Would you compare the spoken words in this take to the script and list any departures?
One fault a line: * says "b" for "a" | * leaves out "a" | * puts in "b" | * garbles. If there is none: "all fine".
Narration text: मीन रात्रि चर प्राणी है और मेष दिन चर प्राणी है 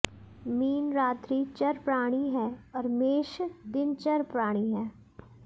all fine